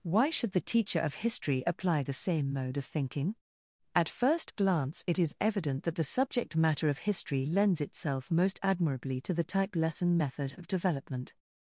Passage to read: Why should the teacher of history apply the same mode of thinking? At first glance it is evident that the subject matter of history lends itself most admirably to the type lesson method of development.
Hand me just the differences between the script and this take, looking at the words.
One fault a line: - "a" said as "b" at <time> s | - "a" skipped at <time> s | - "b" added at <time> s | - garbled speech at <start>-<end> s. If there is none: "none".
none